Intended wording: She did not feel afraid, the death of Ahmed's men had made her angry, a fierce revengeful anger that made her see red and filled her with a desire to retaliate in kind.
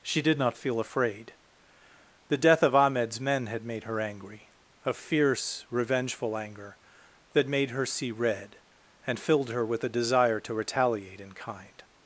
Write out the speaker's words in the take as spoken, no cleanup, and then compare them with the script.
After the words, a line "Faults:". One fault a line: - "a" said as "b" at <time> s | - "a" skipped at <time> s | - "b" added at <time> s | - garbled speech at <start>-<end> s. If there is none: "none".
She did not feel afraid, the death of Ahmed's men had made her angry, a fierce revengeful anger that made her see red and filled her with a desire to retaliate in kind.
Faults:
none